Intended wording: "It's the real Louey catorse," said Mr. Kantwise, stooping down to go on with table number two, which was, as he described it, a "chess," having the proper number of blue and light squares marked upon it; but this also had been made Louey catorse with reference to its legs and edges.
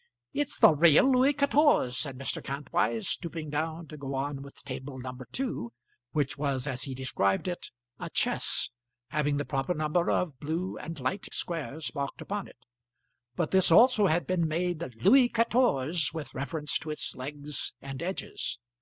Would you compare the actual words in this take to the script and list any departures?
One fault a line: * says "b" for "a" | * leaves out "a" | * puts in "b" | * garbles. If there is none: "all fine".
all fine